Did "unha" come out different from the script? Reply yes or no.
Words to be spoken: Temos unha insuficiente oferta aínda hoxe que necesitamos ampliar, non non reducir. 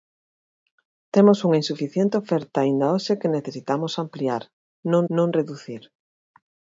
no